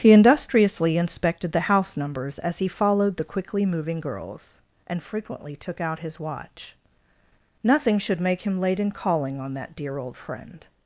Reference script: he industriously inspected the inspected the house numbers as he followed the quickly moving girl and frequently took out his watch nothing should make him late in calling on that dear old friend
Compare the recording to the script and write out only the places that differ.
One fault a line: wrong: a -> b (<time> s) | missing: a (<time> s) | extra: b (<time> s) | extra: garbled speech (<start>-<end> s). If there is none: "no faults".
missing: inspected the (1.7 s)
wrong: girl -> girls (4.0 s)